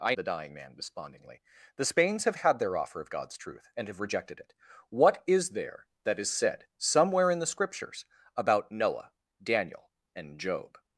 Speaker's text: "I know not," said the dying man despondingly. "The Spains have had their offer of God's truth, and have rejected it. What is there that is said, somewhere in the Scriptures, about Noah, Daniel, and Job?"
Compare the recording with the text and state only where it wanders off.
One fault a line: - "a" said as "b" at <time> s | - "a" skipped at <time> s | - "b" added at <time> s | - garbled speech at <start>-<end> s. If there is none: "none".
- "know not said" skipped at 0.1 s